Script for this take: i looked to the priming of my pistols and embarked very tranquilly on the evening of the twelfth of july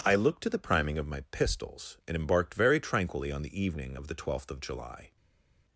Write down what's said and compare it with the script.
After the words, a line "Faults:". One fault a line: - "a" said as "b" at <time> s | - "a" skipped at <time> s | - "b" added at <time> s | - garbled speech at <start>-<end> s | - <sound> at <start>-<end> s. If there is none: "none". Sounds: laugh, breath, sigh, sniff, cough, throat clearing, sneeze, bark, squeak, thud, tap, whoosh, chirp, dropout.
i looked to the priming of my pistols and embarked very tranquilly on the evening of the twelfth of july
Faults:
none